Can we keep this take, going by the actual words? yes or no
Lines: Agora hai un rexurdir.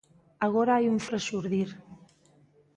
yes